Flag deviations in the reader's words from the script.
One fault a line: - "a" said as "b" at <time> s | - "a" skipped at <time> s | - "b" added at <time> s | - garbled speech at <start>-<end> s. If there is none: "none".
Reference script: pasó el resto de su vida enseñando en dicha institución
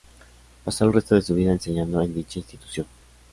none